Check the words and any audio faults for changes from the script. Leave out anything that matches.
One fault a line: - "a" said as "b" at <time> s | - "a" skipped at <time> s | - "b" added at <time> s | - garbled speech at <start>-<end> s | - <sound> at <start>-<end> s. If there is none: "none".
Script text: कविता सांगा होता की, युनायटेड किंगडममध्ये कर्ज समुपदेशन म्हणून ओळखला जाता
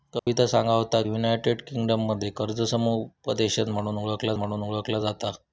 - dropout at 0.2-0.3 s
- "की" skipped at 1.0 s
- "म्हणून ओळखला" added at 4.3 s